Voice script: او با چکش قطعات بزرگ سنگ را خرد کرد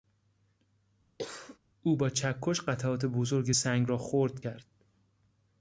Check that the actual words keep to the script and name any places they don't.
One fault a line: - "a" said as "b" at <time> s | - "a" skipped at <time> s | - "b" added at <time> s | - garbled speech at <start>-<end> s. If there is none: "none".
none